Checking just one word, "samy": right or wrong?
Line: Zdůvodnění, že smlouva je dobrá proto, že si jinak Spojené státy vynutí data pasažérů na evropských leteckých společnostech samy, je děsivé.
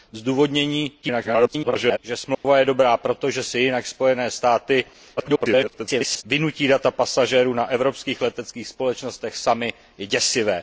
right